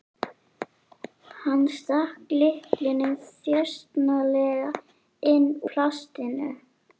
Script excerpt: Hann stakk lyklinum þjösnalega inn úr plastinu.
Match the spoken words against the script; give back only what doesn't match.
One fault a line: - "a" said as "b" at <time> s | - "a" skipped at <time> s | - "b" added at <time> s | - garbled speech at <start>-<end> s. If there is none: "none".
- "úr" skipped at 5.5 s